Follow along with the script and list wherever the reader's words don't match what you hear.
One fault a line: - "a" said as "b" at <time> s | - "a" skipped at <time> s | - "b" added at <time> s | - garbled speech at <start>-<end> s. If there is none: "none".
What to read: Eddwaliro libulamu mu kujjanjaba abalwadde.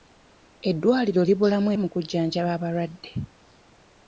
none